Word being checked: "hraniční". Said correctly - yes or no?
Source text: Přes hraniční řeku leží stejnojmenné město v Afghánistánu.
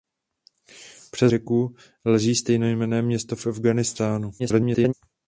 no